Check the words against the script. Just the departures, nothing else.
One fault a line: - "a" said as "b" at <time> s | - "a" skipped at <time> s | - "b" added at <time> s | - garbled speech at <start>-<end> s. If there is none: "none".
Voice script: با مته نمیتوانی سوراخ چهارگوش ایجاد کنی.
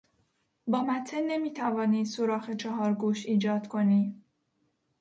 none